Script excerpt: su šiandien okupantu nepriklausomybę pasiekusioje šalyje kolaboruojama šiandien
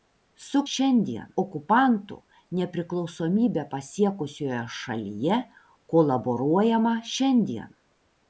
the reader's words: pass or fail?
pass